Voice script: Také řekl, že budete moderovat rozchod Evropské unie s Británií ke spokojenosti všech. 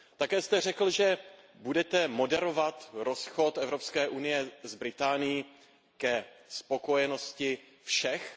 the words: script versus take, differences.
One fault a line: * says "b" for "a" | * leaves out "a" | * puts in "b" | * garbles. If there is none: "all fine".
* puts in "jste"